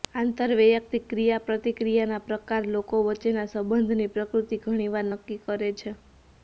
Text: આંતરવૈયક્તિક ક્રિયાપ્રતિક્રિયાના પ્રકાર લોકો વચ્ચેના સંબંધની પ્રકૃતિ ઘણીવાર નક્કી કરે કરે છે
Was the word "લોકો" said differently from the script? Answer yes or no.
no